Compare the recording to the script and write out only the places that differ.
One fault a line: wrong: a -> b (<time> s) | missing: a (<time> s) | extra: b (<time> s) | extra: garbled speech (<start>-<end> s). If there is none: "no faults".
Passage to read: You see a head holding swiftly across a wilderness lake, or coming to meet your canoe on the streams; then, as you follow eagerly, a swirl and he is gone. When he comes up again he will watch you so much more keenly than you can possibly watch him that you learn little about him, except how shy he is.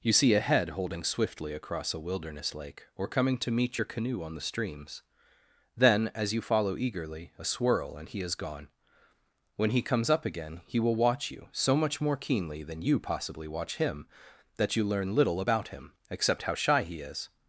missing: can (13.0 s)